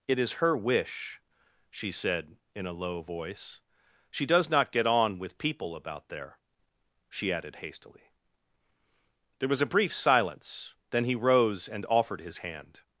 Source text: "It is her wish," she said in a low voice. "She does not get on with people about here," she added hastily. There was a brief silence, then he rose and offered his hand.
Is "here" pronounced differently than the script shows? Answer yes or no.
yes